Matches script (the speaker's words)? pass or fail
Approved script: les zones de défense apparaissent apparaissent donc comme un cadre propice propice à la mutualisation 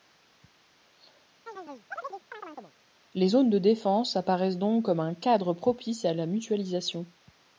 fail